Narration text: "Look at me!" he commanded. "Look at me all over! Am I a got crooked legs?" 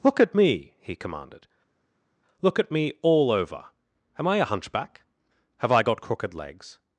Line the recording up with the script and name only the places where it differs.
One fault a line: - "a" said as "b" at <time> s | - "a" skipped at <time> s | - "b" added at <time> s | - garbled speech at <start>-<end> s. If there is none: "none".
- "hunchback Have I" added at 4.4 s